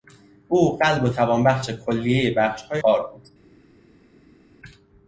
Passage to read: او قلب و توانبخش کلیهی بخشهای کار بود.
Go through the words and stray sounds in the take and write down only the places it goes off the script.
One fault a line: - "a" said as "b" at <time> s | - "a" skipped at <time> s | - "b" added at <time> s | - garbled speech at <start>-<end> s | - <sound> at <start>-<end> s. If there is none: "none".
none